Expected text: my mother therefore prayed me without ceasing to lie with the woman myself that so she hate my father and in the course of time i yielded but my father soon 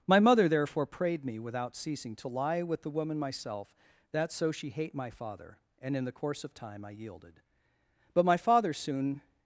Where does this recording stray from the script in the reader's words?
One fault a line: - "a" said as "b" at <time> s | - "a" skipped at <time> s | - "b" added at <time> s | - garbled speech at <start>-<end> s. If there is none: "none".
none